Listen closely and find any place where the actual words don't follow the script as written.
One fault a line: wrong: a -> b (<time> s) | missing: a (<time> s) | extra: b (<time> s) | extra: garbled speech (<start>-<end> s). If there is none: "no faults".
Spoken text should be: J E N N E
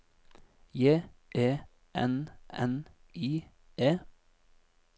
extra: I (3.1 s)